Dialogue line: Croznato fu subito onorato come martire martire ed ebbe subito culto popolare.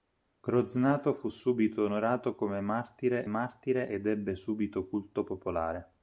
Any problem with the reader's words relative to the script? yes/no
no